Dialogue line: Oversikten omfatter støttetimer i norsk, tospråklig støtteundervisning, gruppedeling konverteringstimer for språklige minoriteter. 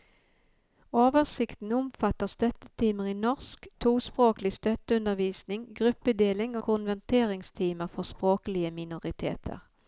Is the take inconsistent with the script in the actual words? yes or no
no